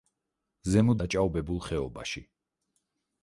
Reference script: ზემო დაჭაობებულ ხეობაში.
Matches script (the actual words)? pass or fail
pass